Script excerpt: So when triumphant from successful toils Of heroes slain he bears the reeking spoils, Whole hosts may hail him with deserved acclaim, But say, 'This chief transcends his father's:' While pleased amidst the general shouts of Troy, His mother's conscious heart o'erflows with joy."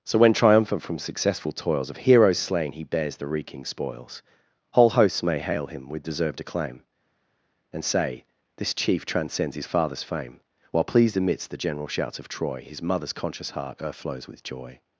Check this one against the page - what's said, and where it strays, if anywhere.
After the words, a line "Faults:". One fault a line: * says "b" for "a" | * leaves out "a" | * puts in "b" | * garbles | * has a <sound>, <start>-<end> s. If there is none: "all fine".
So when triumphant from successful toils Of heroes slain he bears the reeking spoils, Whole hosts may hail him with deserved acclaim, And say, 'This chief transcends his father's fame:' While pleased amidst the general shouts of Troy, His mother's conscious heart o'erflows with joy."
Faults:
* says "And" for "But"
* puts in "fame"